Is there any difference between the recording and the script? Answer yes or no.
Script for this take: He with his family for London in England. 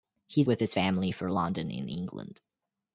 no